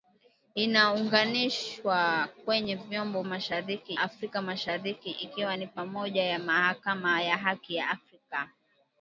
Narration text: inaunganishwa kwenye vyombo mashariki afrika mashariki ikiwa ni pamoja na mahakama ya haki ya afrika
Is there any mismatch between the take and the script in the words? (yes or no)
no